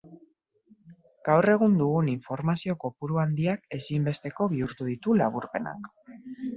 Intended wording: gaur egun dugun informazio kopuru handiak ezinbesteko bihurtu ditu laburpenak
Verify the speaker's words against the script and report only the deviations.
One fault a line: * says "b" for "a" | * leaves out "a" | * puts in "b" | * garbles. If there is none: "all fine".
all fine